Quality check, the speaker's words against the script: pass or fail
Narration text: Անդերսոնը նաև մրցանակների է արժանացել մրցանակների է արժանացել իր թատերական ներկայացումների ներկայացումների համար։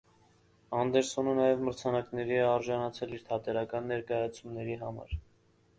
fail